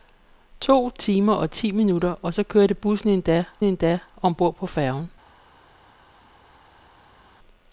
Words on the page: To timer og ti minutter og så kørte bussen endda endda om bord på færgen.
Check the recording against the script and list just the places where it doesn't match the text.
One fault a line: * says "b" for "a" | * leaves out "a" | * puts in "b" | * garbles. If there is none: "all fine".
all fine